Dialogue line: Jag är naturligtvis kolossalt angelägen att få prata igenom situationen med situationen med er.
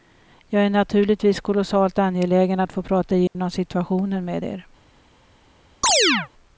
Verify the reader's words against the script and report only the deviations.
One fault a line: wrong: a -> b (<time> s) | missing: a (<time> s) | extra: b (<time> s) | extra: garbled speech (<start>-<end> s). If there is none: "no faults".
missing: situationen med (4.5 s)